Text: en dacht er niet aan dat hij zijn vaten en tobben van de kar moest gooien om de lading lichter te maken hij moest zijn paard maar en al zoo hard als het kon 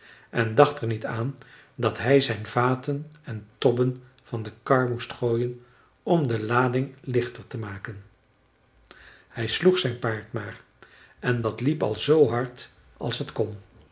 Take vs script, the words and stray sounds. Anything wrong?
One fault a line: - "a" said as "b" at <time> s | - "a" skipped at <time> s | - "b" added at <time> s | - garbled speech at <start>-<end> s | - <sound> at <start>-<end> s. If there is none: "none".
- "moest" said as "sloeg" at 9.5 s
- "dat liep" added at 11.4 s